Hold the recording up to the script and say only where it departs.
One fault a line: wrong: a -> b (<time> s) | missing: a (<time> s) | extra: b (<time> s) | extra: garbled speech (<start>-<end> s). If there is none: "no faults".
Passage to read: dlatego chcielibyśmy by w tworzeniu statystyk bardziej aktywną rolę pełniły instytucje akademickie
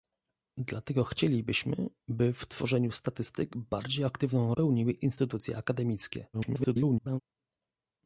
missing: rolę (4.5 s)
extra: garbled speech (6.3-7.2 s)